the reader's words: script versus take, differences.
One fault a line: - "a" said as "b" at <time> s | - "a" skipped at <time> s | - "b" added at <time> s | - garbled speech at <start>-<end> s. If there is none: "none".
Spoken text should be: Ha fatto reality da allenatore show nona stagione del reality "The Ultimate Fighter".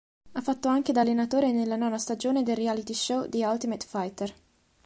- "reality" said as "anche" at 0.7 s
- "show" said as "nella" at 1.5 s
- "show" added at 2.9 s